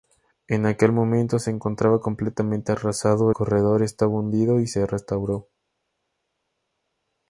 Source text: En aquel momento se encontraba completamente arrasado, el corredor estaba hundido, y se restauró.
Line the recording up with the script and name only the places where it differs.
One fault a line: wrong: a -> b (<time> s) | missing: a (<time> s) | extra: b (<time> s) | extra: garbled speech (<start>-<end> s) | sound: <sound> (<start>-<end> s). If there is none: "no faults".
missing: el (3.3 s)